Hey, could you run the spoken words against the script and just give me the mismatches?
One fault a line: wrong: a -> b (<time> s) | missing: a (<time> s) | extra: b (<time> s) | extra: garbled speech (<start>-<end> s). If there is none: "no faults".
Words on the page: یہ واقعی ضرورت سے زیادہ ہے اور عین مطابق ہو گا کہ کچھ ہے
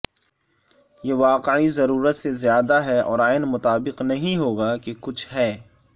extra: نہیں (4.0 s)